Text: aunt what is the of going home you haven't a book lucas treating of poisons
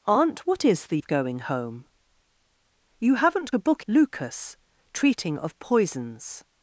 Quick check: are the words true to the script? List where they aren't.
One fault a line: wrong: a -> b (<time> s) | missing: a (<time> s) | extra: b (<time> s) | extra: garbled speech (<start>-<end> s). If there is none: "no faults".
no faults